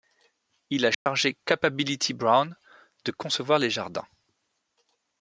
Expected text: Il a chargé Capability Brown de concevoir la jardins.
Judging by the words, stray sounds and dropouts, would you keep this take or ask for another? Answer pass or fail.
fail